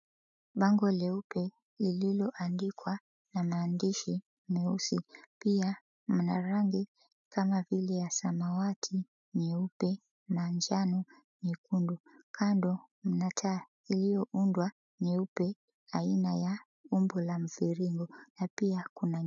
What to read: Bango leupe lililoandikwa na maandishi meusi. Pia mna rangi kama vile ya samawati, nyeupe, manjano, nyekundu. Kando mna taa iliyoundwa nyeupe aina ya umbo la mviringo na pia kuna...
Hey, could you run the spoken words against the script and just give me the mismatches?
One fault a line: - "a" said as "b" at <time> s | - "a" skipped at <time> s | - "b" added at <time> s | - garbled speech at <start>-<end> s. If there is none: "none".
none